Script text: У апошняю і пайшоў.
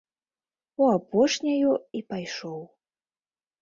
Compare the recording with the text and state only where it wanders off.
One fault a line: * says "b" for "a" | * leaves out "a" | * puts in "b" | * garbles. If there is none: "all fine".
all fine